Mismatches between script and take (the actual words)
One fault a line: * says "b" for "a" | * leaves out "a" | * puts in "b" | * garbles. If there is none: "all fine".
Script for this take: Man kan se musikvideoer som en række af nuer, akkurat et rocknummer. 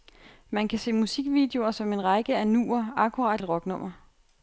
all fine